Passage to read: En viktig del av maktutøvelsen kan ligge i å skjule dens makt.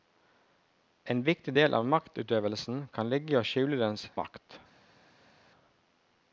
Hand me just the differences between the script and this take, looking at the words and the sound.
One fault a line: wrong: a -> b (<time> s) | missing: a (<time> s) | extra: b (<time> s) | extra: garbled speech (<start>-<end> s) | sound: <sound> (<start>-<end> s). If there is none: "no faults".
no faults